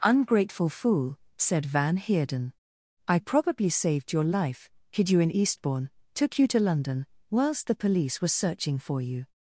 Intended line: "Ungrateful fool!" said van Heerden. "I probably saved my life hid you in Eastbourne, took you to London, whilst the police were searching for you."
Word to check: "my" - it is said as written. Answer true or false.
false